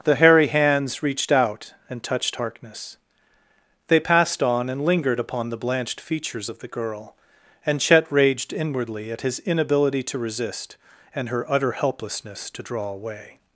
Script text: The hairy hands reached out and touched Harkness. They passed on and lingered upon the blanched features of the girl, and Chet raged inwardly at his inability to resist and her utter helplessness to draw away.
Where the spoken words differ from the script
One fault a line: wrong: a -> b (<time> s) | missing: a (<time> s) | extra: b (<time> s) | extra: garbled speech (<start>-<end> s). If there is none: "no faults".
no faults